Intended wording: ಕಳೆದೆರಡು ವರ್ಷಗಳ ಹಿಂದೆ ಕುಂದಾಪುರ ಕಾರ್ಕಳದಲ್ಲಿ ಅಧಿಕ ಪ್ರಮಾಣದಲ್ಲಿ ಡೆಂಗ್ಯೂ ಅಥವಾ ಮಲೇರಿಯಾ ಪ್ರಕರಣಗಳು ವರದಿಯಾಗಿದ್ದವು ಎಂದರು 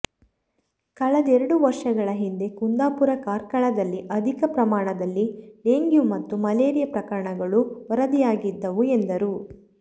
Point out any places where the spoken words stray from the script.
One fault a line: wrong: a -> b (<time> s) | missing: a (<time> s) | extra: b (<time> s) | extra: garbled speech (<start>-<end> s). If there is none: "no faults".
wrong: ಅಥವಾ -> ಮತ್ತು (6.1 s)